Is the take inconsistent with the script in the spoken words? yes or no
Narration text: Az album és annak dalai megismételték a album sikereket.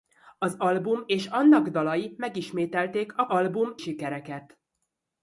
no